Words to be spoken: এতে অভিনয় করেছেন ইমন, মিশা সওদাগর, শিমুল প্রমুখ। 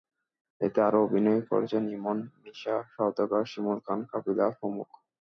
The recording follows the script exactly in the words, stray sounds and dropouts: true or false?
false